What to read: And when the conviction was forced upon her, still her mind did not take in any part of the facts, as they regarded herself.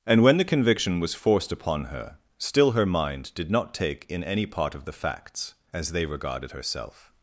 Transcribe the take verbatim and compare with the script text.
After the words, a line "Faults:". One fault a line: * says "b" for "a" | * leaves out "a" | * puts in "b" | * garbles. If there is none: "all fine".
And when the conviction was forced upon her, still her mind did not take in any part of the facts, as they regarded herself.
Faults:
all fine